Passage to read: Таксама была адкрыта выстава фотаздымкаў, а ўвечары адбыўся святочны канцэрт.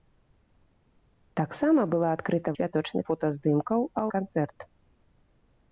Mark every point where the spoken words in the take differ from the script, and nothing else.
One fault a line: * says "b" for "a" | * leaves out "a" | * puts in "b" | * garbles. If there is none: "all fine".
* says "святочны" for "выстава"
* leaves out "ўвечары адбыўся святочны"